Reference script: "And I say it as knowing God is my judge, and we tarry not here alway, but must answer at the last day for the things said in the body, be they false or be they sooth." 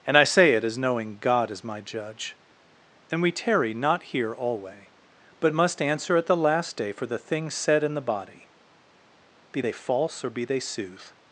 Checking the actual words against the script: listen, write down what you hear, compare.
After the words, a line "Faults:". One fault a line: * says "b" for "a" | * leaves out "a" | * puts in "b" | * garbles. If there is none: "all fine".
"And I say it as knowing God is my judge, and we tarry not here alway, but must answer at the last day for the things said in the body, be they false or be they sooth."
Faults:
all fine